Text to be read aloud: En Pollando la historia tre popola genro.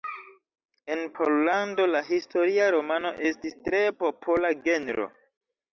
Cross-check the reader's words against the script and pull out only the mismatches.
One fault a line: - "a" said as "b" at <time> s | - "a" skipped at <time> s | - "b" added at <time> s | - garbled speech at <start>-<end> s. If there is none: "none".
- "romano estis" added at 2.8 s